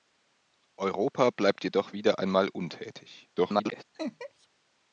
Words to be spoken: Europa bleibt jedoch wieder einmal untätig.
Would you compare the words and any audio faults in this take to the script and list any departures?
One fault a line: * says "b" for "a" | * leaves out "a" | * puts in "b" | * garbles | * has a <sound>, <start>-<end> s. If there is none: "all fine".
* garbles
* has a laugh, 3.9-4.5 s